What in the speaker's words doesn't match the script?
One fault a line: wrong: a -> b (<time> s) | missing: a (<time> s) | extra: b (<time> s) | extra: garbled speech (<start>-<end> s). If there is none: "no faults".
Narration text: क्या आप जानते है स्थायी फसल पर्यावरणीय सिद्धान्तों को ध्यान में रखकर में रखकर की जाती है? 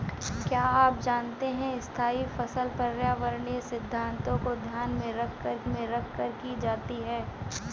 no faults